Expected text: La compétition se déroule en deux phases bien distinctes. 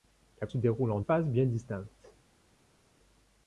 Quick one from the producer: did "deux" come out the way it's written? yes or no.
no